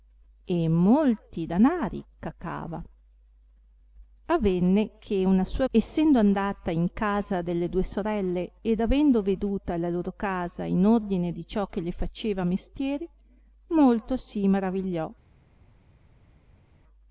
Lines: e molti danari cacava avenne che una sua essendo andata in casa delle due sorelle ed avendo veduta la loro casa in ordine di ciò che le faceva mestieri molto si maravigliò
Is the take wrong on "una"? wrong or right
right